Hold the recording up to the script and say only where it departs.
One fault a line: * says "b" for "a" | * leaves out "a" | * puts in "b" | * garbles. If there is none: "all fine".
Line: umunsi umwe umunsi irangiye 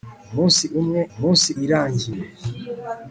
all fine